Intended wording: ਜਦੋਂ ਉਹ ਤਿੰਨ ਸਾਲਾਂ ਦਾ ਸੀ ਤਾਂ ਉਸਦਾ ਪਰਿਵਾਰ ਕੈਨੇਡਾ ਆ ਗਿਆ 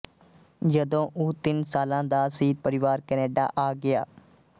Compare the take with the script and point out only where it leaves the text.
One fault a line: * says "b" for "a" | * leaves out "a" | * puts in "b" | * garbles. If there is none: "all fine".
* leaves out "ਤਾਂ ਉਸਦਾ"